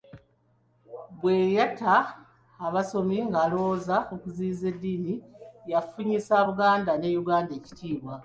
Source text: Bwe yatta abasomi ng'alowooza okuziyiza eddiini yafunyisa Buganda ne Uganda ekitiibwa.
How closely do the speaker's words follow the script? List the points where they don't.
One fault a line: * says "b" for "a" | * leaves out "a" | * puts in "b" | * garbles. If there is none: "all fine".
all fine